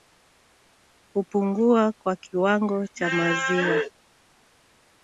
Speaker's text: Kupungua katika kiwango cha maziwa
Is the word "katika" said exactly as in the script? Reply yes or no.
no